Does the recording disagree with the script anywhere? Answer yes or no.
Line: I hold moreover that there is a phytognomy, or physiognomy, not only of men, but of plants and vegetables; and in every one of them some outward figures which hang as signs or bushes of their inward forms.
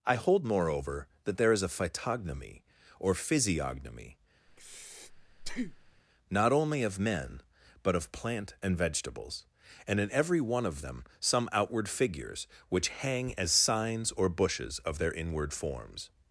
yes